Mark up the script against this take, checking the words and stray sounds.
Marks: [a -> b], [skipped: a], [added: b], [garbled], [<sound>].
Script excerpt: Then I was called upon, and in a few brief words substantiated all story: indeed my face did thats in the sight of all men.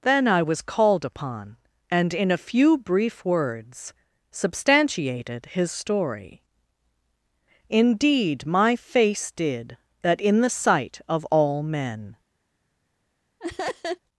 Then I was called upon, and in a few brief words substantiated [all -> his] story: indeed my face did [thats -> that] in the sight of all men. [laugh]